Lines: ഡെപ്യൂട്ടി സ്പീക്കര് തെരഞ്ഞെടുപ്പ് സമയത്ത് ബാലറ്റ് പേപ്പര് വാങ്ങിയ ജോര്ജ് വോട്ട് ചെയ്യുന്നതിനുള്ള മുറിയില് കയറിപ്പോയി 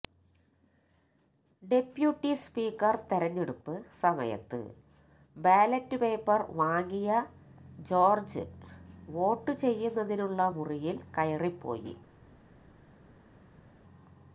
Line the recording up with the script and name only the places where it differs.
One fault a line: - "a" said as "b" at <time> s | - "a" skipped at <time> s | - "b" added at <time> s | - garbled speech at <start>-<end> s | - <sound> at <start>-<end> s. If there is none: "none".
none